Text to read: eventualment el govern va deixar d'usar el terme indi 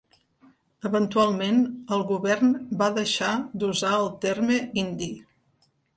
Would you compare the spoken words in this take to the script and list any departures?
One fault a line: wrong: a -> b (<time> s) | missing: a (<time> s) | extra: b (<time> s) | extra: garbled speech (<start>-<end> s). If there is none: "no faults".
no faults